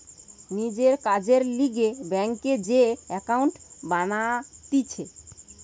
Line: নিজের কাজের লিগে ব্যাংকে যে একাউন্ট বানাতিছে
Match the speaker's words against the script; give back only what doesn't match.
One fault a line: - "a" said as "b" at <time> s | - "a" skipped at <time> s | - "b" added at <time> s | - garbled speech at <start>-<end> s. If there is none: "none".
none